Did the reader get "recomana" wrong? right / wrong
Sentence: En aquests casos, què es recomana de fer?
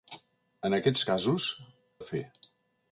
wrong